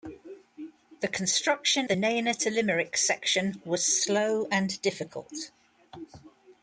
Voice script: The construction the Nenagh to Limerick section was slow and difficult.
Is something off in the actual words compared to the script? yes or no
no